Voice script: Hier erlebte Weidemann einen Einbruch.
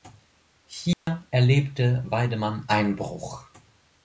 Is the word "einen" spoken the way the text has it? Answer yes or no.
no